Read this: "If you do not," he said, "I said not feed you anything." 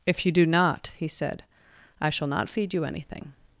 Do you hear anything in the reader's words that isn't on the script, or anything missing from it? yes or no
yes